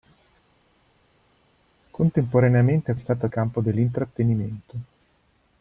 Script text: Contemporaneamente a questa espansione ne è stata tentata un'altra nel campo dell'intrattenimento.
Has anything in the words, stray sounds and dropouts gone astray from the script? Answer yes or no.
yes